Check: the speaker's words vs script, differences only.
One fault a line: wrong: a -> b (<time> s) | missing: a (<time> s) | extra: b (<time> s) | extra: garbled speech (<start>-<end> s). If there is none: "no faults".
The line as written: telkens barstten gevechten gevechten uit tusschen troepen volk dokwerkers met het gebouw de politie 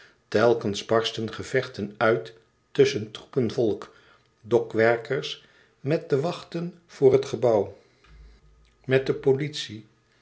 missing: gevechten (1.9 s)
extra: de wachten voor (6.1 s)
extra: met (8.8 s)